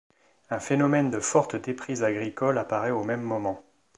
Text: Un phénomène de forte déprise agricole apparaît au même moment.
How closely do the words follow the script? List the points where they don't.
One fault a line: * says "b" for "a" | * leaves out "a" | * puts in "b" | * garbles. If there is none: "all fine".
all fine